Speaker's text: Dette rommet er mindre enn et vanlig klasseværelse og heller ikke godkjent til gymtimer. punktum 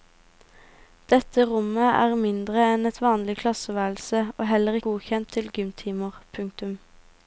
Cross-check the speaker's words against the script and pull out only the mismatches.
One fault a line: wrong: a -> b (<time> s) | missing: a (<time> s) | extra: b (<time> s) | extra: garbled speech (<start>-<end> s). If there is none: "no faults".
missing: ikke (4.8 s)